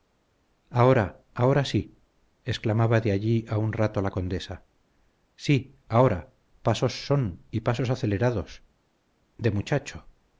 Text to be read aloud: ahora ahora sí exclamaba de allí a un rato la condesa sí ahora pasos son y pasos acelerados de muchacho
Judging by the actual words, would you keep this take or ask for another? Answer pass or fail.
pass